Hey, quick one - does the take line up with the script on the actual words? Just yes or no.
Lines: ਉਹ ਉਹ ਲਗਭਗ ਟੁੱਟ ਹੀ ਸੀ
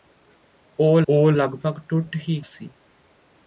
yes